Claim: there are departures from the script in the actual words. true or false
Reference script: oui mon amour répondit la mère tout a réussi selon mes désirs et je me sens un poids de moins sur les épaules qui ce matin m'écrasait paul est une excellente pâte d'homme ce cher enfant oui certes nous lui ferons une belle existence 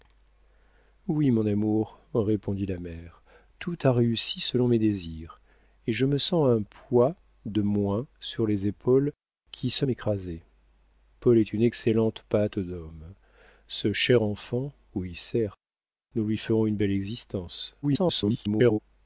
true